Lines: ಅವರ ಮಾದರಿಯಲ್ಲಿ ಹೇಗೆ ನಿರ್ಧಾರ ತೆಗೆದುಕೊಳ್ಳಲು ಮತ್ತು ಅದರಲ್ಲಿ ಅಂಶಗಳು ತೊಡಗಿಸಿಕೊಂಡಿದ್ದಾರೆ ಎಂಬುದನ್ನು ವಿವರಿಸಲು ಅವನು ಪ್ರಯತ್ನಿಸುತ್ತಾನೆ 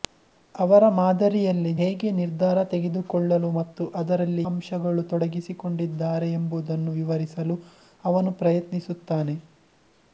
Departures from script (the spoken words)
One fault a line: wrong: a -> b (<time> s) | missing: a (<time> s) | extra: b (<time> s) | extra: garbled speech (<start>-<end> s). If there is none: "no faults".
no faults